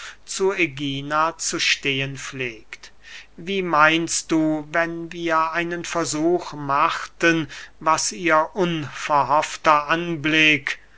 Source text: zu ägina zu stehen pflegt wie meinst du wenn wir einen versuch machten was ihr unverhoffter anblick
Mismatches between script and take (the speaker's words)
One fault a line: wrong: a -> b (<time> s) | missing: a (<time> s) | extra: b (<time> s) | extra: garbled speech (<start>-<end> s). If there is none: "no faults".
no faults